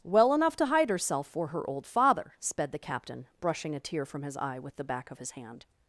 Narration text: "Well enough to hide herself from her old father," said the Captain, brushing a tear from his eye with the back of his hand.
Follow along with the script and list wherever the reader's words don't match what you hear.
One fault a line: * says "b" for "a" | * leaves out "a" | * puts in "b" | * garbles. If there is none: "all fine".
* says "for" for "from"
* says "sped" for "said"